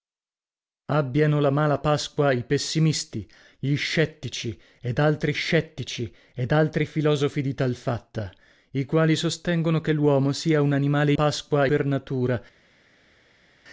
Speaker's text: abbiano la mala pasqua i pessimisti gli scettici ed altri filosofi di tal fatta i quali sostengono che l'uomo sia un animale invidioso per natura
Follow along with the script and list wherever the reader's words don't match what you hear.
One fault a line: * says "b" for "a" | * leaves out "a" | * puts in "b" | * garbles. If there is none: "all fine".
* puts in "scettici ed altri"
* says "pasqua" for "invidioso"